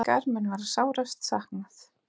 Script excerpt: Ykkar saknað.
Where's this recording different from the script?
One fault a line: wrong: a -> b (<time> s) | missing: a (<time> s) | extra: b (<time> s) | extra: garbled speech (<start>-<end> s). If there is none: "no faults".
extra: mun verða sárast (0.3 s)